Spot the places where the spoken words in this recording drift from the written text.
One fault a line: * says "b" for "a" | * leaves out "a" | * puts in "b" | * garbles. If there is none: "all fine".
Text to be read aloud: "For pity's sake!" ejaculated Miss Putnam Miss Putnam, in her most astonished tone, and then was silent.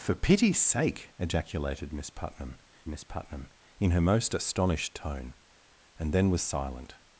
all fine